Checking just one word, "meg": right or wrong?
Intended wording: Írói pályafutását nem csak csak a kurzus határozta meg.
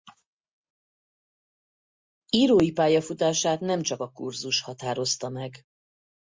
right